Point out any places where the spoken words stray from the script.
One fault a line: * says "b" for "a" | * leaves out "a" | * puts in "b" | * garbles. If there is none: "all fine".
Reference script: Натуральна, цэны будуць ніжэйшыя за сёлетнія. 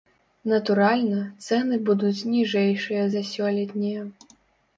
all fine